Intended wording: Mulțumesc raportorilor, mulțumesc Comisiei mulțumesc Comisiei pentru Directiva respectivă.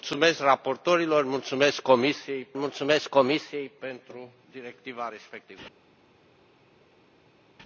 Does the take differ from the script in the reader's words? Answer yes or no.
no